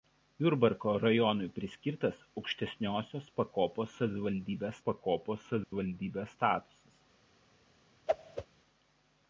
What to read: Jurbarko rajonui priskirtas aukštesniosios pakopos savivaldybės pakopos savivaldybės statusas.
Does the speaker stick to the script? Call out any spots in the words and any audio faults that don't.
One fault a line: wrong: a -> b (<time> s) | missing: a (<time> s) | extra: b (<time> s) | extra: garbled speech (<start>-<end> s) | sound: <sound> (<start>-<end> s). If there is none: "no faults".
sound: dropout (5.6-5.7 s)
sound: whoosh (8.1-8.5 s)